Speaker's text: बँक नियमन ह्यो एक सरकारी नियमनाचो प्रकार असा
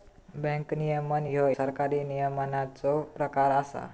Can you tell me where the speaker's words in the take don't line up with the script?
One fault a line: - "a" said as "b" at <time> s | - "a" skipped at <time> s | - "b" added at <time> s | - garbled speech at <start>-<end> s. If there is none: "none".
- "एक" skipped at 1.5 s